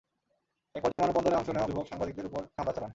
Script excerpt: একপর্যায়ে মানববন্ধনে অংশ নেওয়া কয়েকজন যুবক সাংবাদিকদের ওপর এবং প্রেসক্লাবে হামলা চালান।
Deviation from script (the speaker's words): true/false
true